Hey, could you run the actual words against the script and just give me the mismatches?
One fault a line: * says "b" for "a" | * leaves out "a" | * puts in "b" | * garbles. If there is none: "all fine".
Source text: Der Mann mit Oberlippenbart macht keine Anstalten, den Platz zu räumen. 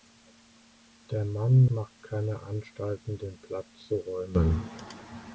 * leaves out "mit Oberlippenbart"